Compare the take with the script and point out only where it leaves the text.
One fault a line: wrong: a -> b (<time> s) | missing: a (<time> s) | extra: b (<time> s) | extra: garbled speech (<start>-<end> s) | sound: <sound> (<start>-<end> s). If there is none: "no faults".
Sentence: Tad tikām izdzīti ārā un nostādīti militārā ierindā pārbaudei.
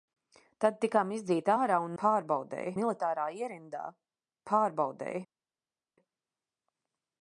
wrong: nostādīti -> pārbaudei (2.0 s)